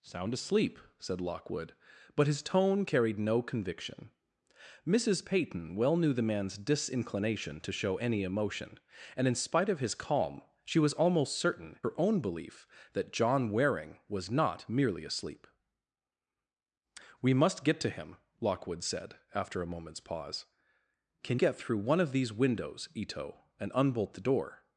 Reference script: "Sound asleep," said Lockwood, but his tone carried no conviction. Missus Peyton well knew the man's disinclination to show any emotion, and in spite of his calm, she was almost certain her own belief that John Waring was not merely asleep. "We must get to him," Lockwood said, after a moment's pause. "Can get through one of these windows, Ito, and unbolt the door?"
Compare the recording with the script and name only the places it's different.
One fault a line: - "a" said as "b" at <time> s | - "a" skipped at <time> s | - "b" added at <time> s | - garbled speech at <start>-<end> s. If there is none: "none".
none